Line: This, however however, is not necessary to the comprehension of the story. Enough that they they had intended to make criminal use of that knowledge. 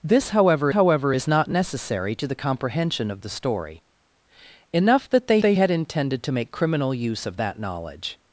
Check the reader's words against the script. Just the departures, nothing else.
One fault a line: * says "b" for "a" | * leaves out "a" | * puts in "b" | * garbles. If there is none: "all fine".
all fine